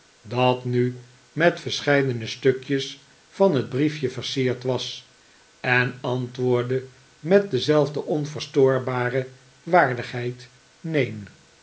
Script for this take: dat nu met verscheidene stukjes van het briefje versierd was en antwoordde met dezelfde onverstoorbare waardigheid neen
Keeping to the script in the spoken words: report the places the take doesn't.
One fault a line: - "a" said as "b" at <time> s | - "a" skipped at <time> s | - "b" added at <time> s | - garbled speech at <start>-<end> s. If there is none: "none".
none